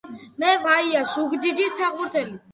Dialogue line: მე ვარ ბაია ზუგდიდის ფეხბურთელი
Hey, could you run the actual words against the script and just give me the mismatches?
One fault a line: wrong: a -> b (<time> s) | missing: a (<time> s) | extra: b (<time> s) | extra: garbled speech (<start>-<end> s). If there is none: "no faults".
missing: ვარ (0.5 s)